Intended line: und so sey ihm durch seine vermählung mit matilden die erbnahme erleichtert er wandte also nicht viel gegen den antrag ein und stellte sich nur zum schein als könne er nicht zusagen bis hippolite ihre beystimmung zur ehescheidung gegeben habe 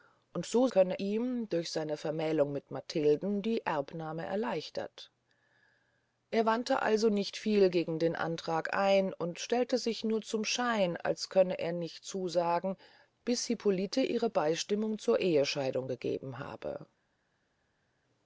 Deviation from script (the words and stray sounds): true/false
true